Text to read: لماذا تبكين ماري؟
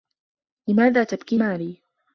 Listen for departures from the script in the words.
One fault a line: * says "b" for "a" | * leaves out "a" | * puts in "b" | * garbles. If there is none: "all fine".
all fine